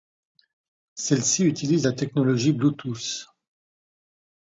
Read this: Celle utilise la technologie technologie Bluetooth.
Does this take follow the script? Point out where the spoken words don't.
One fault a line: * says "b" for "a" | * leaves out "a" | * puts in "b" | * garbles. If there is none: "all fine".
* puts in "ci"
* leaves out "technologie"